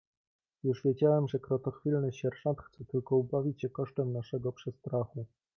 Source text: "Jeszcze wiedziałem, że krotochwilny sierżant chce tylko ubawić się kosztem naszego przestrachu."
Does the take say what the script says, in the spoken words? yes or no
no